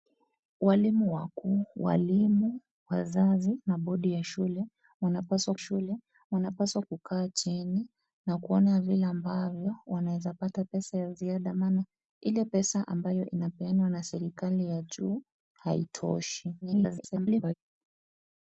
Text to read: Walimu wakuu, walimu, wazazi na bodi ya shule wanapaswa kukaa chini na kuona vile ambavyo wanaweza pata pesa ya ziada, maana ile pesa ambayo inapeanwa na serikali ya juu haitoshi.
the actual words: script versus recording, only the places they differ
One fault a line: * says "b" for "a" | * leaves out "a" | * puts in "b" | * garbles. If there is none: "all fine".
* puts in "shule wanapaswa"
* garbles